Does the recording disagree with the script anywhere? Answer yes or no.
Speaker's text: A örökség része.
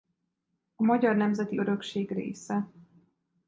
yes